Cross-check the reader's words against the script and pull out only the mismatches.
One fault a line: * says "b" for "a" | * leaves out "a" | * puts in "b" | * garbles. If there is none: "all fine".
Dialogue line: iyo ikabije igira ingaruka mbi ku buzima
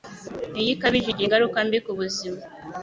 all fine